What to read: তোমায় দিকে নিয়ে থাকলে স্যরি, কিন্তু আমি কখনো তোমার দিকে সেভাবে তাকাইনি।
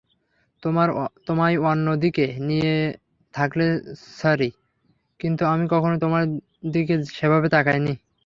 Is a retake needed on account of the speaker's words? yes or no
yes